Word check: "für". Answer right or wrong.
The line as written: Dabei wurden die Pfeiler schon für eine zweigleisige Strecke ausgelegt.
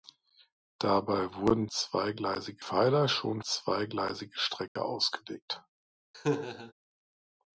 wrong